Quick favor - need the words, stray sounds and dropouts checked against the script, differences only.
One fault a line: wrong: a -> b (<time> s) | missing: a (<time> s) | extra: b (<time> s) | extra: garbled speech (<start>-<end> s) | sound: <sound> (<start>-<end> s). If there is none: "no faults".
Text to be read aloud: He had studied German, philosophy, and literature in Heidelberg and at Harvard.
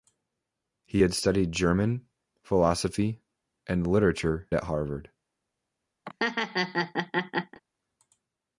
missing: in Heidelberg and (4.5 s)
sound: laugh (6.0-7.6 s)